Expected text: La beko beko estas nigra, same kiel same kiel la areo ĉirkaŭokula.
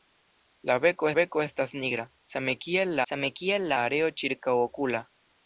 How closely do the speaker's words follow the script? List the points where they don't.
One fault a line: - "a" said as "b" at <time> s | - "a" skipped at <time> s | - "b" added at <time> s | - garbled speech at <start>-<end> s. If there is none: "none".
none